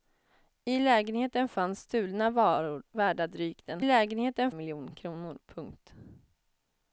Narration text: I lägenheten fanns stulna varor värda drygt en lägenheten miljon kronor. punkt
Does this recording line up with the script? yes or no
yes